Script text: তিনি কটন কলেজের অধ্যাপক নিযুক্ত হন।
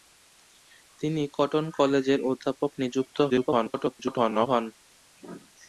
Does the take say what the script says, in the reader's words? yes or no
no